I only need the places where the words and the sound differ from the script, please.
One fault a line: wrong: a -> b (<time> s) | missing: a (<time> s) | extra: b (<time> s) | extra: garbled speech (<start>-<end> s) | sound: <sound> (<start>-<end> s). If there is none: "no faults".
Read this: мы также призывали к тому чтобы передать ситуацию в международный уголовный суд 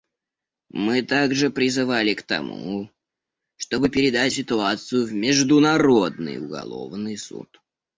no faults